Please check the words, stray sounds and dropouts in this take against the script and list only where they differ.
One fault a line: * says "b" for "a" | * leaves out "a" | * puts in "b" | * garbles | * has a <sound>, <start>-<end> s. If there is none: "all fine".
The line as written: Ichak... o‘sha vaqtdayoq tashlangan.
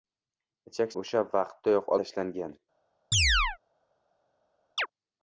* has a chirp, 3.1-3.6 s
* has a chirp, 4.8-4.9 s